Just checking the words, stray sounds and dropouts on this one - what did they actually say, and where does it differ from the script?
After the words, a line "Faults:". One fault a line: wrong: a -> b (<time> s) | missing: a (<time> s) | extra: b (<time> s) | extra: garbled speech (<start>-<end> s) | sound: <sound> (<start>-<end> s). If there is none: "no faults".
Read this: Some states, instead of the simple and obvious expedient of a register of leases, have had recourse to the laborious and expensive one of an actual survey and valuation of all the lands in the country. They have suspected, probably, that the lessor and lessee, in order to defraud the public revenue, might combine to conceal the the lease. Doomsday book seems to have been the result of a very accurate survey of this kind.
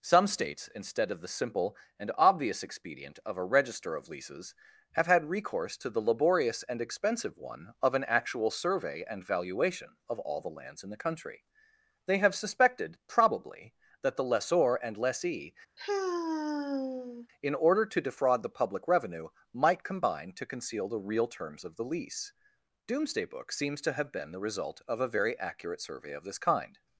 Some states, instead of the simple and obvious expedient of a register of leases, have had recourse to the laborious and expensive one of an actual survey and valuation of all the lands in the country. They have suspected, probably, that the lessor and lessee, in order to defraud the public revenue, might combine to conceal the real terms of the lease. Doomsday book seems to have been the result of a very accurate survey of this kind.
Faults:
sound: sigh (15.8-17.3 s)
extra: real terms of (21.0 s)